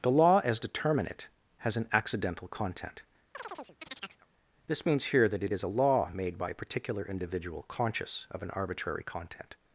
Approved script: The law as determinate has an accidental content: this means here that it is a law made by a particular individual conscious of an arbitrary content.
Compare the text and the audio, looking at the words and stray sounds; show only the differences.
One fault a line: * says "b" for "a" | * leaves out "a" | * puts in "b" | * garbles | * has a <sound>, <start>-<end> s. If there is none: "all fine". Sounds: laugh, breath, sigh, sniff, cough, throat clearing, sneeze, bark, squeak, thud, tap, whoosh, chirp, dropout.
* has a chirp, 3.3-4.3 s